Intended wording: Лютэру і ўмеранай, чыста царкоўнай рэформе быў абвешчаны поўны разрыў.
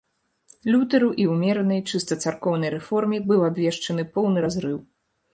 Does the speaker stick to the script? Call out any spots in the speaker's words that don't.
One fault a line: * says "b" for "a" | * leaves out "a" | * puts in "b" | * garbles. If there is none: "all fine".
all fine